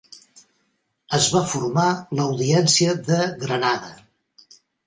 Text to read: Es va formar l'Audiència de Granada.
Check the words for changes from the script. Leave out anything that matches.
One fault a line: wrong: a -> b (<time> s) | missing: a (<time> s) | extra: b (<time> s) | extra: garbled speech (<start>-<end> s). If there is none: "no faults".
no faults